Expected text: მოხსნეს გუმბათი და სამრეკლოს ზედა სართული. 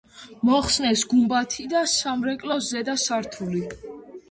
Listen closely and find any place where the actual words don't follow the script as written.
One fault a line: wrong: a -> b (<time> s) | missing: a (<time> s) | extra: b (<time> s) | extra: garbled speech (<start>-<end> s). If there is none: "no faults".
no faults